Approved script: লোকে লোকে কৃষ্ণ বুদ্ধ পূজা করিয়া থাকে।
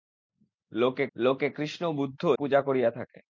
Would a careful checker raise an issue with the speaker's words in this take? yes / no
no